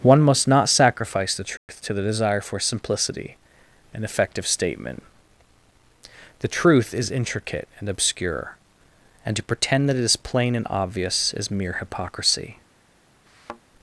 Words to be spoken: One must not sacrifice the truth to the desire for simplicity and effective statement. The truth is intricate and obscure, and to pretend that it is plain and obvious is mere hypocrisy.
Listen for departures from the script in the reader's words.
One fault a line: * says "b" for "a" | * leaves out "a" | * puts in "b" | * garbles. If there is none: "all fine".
all fine